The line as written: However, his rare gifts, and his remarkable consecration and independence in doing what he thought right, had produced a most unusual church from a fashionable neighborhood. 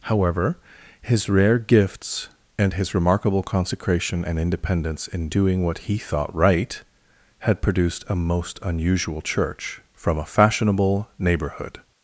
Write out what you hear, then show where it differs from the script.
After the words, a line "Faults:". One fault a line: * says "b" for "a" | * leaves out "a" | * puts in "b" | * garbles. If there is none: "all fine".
However, his rare gifts, and his remarkable consecration and independence in doing what he thought right, had produced a most unusual church from a fashionable neighborhood.
Faults:
all fine